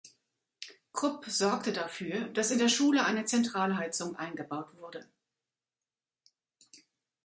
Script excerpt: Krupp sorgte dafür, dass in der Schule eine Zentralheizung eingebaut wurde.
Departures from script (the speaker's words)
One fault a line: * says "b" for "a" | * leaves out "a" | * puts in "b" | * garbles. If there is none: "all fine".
all fine